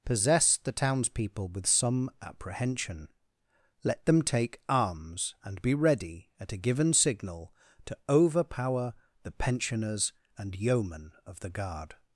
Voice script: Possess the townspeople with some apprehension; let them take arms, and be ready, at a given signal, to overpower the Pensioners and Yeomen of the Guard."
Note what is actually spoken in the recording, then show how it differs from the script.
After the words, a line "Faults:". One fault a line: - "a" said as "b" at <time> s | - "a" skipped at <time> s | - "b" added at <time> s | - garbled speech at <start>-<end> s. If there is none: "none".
Possess the townspeople with some apprehension; let them take arms, and be ready, at a given signal, to overpower the Pensioners and Yeomen of the Guard."
Faults:
none